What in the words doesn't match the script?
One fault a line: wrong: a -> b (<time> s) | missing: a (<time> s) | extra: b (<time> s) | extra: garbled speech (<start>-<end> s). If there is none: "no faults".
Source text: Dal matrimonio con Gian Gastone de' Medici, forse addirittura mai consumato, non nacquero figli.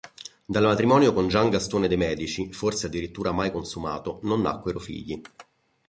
no faults